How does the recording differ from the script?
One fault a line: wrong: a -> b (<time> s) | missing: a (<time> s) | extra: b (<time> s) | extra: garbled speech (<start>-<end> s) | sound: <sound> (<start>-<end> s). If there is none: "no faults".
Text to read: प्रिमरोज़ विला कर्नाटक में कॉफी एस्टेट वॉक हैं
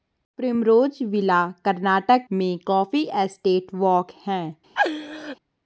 sound: laugh (4.8-5.4 s)